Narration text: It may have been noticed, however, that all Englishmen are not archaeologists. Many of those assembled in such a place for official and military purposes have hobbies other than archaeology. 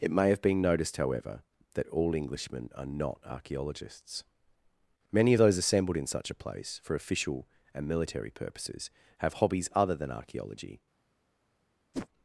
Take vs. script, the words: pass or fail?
pass